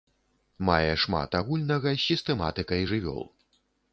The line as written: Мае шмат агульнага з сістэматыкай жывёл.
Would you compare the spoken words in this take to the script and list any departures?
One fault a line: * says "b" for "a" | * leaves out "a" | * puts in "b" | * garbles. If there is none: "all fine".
all fine